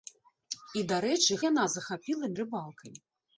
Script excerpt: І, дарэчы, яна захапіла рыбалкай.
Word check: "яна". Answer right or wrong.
right